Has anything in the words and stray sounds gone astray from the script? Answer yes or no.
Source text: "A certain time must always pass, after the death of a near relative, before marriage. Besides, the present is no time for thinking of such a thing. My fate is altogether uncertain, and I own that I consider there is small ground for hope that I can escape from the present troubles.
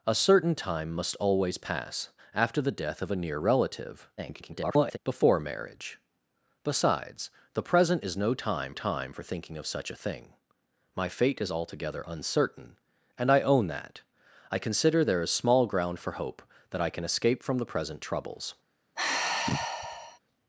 yes